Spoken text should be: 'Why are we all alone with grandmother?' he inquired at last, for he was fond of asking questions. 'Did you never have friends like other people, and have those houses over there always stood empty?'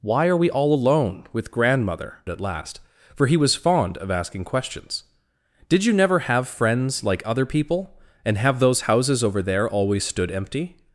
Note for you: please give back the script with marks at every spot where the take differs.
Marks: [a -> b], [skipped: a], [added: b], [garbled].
'Why are we all alone with grandmother?' [skipped: he inquired] at last, for he was fond of asking questions. 'Did you never have friends like other people, and have those houses over there always stood empty?'